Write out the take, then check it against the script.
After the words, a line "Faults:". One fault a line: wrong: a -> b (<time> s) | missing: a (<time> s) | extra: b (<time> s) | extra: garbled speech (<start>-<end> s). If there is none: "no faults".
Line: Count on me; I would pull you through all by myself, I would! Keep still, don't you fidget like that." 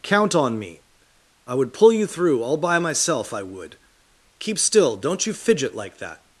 Count on me; I would pull you through all by myself, I would! Keep still, don't you fidget like that."
Faults:
no faults